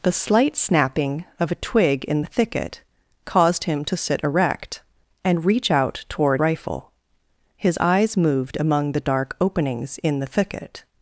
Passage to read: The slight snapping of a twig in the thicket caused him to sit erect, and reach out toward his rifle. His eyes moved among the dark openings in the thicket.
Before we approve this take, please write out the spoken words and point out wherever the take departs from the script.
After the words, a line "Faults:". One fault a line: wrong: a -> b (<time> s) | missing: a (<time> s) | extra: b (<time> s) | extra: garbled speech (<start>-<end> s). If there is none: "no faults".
The slight snapping of a twig in the thicket caused him to sit erect, and reach out toward rifle. His eyes moved among the dark openings in the thicket.
Faults:
missing: his (6.4 s)